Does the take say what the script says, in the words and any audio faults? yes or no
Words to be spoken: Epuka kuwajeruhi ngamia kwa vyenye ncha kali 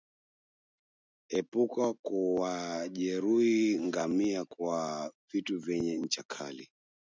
no